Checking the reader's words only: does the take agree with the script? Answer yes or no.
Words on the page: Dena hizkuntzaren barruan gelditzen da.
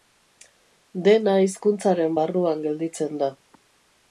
yes